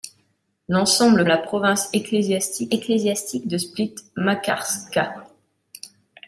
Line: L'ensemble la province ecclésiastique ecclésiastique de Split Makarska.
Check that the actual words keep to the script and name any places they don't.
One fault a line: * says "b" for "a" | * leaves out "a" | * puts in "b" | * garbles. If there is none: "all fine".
all fine